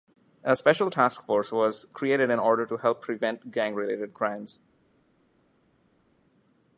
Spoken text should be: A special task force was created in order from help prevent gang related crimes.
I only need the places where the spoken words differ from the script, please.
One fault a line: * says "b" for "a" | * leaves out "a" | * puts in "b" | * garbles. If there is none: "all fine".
* says "to" for "from"